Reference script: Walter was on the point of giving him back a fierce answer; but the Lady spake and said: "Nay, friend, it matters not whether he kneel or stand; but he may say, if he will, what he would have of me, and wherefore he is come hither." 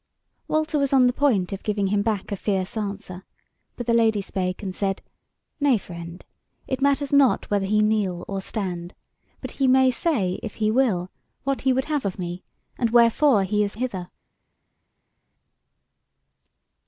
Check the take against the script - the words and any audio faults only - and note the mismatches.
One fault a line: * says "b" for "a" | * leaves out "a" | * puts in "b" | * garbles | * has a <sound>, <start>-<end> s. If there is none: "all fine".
* leaves out "come"